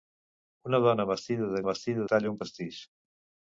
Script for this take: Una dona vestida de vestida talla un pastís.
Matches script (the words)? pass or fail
pass